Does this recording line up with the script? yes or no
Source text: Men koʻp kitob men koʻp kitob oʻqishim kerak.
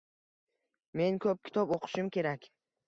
no